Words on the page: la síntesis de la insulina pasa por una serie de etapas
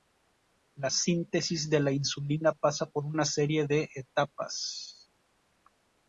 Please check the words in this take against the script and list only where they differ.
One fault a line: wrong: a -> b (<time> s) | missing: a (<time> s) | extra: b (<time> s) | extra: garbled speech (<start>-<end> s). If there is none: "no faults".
no faults